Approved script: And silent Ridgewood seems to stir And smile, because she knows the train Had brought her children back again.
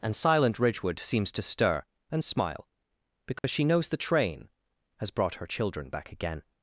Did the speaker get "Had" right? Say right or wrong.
wrong